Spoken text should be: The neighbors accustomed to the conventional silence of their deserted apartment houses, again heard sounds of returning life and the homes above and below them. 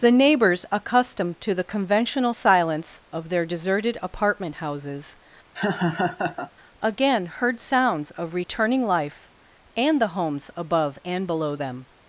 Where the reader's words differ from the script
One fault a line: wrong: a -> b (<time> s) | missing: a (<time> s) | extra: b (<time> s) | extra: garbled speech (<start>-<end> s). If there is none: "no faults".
no faults